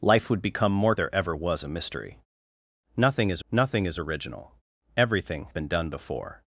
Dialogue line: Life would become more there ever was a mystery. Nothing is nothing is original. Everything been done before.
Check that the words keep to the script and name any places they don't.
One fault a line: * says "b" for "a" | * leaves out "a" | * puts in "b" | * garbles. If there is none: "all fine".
all fine